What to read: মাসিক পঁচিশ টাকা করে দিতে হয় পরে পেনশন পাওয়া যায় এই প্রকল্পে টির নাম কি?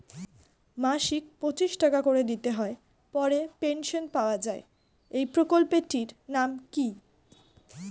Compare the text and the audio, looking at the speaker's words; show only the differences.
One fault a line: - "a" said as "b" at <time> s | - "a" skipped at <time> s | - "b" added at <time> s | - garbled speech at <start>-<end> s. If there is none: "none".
none